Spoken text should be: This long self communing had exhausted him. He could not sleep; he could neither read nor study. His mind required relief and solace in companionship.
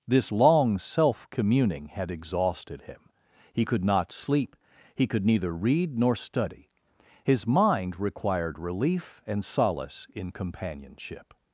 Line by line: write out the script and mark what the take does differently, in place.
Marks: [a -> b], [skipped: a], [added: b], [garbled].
This long self communing had exhausted him. He could not sleep; he could neither read nor study. His mind required relief and solace in companionship.